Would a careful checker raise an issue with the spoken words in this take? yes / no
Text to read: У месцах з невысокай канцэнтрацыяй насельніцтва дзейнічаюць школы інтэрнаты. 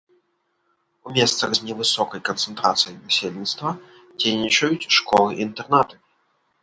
no